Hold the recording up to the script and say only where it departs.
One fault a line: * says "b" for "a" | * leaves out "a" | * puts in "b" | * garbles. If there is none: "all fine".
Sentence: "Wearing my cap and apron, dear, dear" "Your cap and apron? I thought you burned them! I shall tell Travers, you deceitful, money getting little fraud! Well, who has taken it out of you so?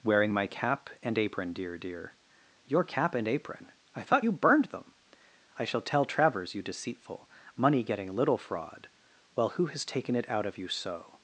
all fine